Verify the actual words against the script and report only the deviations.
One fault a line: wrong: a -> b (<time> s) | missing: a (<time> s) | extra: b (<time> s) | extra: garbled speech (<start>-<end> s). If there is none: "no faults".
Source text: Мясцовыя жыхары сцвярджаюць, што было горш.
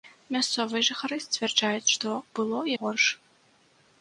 no faults